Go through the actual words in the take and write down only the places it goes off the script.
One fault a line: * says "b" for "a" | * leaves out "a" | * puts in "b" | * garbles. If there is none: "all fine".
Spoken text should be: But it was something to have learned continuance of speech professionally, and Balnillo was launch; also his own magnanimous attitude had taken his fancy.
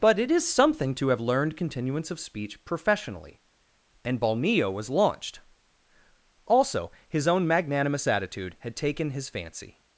* says "is" for "was"
* says "launched" for "launch"